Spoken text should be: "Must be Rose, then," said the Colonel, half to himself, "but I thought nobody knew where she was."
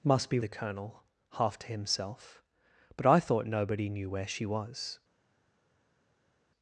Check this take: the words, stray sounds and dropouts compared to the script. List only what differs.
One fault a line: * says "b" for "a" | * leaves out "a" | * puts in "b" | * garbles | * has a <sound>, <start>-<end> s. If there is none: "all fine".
* leaves out "Rose then said"